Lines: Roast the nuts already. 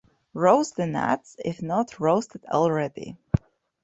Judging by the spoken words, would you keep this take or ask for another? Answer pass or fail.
fail